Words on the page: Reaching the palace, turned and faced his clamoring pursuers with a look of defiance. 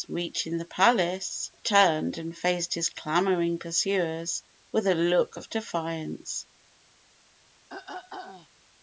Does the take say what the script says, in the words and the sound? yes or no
no